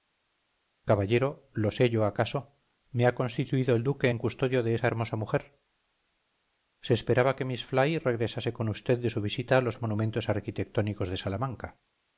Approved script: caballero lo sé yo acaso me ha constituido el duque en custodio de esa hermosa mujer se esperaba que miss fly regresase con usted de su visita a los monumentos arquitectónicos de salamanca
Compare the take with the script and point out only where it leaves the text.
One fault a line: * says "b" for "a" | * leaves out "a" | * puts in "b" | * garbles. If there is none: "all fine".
all fine